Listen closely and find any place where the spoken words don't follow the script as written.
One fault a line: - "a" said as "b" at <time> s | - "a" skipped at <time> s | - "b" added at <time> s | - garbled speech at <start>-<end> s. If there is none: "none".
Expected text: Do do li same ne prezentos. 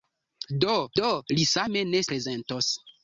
none